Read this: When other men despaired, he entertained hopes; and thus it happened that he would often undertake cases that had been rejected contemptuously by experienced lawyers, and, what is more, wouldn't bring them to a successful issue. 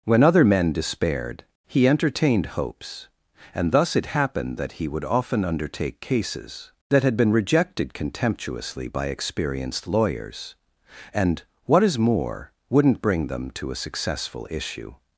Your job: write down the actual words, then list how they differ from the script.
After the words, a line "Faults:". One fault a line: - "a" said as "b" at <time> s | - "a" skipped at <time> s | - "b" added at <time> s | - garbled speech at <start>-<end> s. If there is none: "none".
When other men despaired, he entertained hopes; and thus it happened that he would often undertake cases that had been rejected contemptuously by experienced lawyers, and, what is more, wouldn't bring them to a successful issue.
Faults:
none